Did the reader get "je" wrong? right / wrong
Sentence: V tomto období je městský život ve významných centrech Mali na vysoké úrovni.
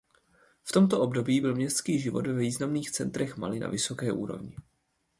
wrong